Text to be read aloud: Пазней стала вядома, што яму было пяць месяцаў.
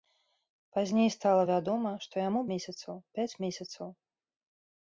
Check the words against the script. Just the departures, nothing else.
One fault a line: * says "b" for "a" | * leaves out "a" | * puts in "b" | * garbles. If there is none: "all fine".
* says "месяцаў" for "было"